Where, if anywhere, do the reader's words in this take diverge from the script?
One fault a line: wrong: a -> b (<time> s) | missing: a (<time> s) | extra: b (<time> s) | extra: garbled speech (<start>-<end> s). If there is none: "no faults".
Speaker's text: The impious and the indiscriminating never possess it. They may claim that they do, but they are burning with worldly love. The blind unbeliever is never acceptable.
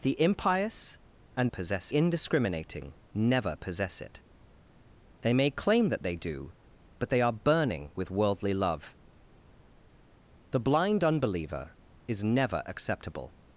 wrong: the -> possess (1.5 s)